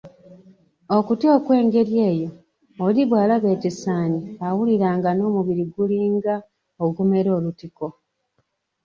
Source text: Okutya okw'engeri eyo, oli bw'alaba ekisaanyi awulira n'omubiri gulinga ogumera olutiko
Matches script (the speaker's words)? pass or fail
fail